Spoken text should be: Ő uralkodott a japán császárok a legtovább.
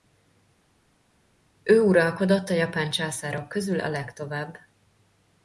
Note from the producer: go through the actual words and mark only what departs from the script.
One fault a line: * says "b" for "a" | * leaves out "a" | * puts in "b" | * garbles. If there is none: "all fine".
* puts in "közül"